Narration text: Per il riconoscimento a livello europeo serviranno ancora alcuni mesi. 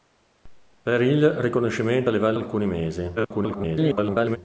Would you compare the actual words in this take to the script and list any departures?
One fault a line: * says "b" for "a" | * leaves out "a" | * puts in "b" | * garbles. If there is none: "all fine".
* leaves out "europeo serviranno ancora"
* garbles